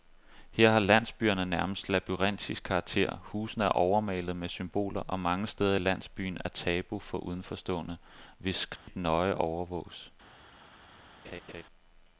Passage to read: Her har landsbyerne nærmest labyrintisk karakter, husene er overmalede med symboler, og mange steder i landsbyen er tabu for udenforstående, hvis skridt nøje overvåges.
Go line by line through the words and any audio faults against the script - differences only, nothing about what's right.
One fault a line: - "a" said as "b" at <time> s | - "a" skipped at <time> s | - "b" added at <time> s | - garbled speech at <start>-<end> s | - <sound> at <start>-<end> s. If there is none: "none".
- dropout at 8.8-8.9 s
- laugh at 11.2-11.6 s